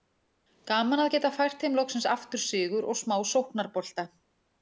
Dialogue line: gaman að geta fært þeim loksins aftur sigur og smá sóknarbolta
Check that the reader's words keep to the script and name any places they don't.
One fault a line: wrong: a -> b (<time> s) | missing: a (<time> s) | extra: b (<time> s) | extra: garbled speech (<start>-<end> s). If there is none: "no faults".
no faults